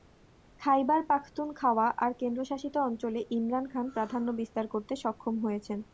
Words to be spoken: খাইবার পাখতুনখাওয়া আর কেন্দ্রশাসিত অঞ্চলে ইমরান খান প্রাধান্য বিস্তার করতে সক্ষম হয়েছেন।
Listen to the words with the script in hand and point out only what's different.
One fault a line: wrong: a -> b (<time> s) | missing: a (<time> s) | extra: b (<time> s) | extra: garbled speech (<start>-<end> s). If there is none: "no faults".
no faults